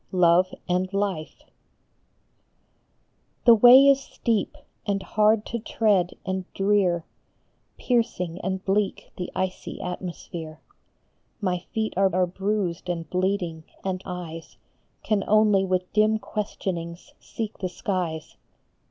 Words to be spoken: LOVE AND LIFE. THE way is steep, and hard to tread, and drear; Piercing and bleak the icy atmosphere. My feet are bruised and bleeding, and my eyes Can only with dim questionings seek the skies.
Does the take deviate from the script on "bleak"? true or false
false